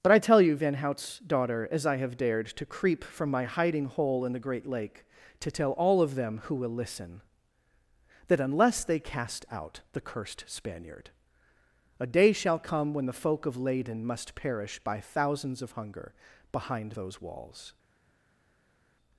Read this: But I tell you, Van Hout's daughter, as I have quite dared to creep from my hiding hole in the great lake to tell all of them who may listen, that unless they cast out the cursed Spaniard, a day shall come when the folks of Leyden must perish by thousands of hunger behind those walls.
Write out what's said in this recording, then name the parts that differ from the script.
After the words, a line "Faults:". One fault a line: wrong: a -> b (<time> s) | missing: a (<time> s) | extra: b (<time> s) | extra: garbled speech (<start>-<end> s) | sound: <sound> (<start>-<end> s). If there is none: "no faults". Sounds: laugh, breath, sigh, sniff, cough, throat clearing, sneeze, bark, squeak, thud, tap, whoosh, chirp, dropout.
But I tell you, Van Hout's daughter, as I have dared to creep from my hiding hole in the great lake to tell all of them who will listen, that unless they cast out the cursed Spaniard, a day shall come when the folk of Leyden must perish by thousands of hunger behind those walls.
Faults:
missing: quite (2.2 s)
wrong: may -> will (6.5 s)
wrong: folks -> folk (13.1 s)